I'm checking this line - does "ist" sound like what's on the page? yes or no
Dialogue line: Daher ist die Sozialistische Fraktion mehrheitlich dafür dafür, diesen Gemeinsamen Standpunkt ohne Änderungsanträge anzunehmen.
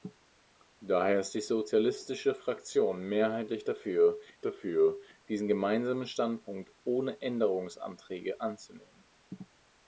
yes